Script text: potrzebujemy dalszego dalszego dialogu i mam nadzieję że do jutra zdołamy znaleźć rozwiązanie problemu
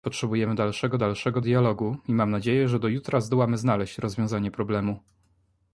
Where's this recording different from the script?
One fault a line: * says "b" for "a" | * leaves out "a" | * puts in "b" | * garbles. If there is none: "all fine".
all fine